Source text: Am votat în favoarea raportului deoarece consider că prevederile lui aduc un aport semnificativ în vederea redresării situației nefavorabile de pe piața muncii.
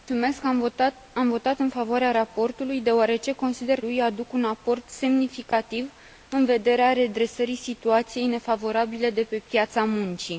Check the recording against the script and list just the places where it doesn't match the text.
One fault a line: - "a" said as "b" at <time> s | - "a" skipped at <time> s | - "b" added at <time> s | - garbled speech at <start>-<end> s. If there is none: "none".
- "că prevederile" skipped at 3.8 s